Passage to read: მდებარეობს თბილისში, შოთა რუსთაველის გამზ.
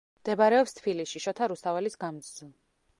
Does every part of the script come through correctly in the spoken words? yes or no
yes